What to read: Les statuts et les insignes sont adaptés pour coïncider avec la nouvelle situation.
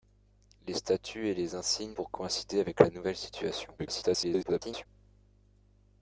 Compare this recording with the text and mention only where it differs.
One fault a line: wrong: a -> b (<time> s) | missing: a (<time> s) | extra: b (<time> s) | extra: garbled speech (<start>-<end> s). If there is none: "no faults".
missing: sont adaptés (1.9 s)
extra: garbled speech (3.8-4.9 s)